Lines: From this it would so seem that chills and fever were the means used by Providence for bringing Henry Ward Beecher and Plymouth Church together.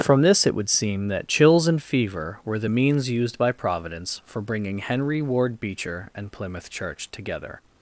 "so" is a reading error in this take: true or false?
true